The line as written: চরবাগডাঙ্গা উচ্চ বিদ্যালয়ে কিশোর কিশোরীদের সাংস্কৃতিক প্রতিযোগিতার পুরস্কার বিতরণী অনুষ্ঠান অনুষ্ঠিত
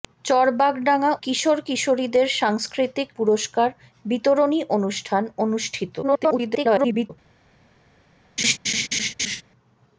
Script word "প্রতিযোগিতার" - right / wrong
wrong